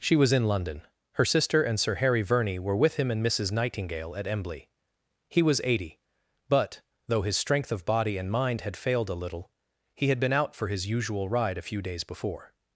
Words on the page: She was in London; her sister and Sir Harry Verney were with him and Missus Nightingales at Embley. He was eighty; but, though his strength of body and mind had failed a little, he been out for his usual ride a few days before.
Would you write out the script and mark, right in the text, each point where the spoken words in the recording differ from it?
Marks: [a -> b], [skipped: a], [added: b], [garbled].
She was in London; her sister and Sir Harry Verney were with him and Missus [Nightingales -> Nightingale] at Embley. He was eighty; but, though his strength of body and mind had failed a little, he [added: had] been out for his usual ride a few days before.